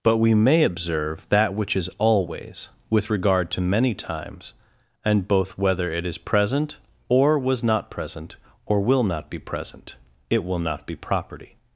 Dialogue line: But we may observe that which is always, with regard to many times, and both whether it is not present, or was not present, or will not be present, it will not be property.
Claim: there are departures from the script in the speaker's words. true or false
true